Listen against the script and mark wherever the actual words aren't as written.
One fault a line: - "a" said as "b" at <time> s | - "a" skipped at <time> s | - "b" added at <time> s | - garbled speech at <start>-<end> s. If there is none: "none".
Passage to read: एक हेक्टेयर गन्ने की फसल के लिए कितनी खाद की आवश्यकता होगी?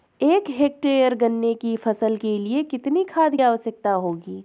- "की" skipped at 3.4 s